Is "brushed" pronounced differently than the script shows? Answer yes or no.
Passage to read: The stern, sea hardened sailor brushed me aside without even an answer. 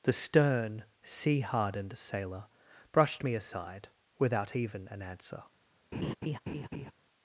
no